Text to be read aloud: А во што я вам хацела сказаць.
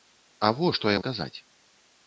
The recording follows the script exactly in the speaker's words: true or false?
false